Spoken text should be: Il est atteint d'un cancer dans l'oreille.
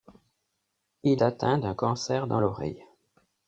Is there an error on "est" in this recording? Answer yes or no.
yes